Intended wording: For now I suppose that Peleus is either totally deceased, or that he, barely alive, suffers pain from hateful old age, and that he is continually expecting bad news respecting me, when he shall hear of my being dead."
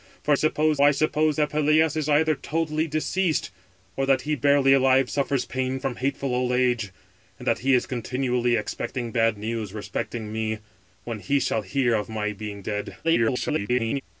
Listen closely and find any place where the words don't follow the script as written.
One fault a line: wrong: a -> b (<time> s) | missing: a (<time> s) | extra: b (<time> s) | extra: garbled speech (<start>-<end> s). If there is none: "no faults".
wrong: now -> suppose (0.3 s)
extra: garbled speech (13.0-14.0 s)